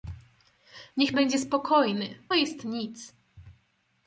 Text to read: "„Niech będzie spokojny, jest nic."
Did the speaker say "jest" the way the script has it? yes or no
yes